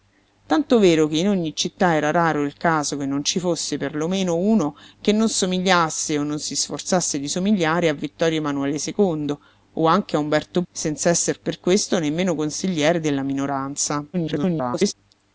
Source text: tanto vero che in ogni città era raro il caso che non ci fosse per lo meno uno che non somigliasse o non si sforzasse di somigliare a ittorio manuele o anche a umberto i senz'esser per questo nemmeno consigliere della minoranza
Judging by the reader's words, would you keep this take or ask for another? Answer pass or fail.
fail